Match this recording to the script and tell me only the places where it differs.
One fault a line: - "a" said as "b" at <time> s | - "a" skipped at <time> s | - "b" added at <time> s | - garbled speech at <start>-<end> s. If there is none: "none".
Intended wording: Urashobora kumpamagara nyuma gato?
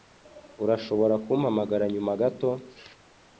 none